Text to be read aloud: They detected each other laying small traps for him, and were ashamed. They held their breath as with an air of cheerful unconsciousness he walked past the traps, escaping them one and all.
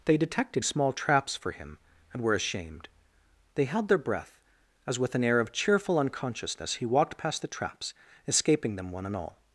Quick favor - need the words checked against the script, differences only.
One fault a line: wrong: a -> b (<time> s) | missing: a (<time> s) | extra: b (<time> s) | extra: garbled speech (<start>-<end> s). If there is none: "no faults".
missing: each other laying (0.7 s)